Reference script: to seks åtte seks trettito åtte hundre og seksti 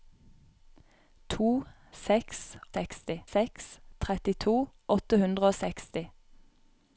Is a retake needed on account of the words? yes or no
yes